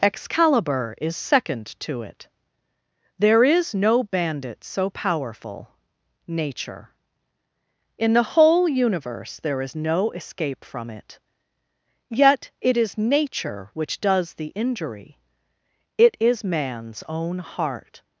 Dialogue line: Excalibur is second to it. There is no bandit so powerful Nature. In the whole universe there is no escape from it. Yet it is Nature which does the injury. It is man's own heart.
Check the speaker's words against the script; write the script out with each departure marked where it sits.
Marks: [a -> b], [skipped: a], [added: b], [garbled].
Excalibur is second to it. There is no bandit so powerful Nature. In the whole universe there is no escape from it. Yet it is Nature which does the injury. It is man's own heart.